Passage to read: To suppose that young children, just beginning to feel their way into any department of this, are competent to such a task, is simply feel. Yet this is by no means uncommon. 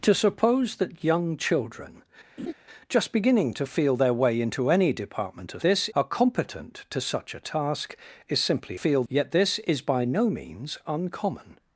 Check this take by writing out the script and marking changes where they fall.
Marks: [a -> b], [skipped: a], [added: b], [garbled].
To suppose that young children, just beginning to feel their way into any department of this, are competent to such a task, is simply feel. Yet this is by no means uncommon.